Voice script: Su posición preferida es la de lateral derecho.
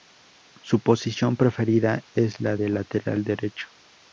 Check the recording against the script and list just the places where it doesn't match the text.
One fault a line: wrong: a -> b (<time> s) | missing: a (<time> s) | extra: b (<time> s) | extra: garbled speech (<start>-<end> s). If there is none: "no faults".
no faults